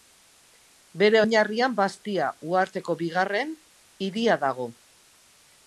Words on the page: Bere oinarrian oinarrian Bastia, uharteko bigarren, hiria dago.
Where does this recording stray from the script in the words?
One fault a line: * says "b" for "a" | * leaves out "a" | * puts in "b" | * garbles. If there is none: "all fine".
* leaves out "oinarrian"